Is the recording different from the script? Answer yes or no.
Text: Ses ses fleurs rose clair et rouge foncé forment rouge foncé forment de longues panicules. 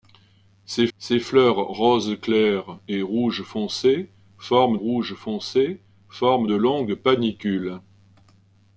no